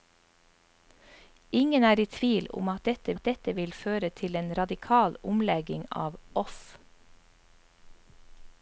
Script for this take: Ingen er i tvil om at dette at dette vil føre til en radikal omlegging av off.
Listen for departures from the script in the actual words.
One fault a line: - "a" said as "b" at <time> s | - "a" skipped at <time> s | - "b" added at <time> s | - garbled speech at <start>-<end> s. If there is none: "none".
none